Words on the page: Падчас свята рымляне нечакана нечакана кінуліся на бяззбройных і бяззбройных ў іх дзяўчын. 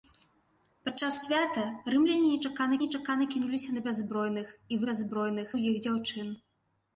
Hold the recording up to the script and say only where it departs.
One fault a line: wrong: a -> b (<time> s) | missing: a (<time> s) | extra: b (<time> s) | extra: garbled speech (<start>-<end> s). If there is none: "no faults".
no faults